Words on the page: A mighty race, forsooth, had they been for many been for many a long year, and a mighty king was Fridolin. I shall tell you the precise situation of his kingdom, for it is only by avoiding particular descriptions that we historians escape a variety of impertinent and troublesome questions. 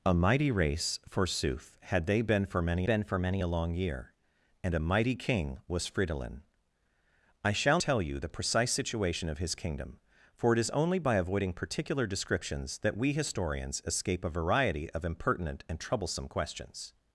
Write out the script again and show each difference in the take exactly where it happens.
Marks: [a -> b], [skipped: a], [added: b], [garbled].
A mighty race, forsooth, had they been for many been for many a long year, and a mighty king was Fridolin. I shall tell you the precise situation of his kingdom, for it is only by avoiding particular descriptions that we historians escape a variety of impertinent and troublesome questions.